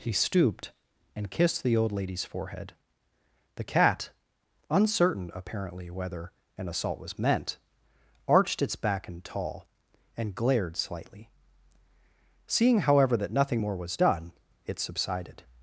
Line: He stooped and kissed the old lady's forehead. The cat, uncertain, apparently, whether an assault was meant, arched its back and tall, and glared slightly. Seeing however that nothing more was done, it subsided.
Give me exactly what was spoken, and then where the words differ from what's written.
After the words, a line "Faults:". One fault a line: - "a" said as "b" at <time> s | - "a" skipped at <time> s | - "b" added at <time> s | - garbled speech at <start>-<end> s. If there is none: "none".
He stooped and kissed the old lady's forehead. The cat, uncertain, apparently, whether an assault was meant, arched its back and tall, and glared slightly. Seeing however that nothing more was done, it subsided.
Faults:
none